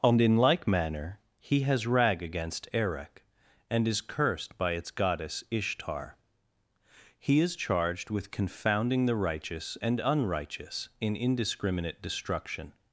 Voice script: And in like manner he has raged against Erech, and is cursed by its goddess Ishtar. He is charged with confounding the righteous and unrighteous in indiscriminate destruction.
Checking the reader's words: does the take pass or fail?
fail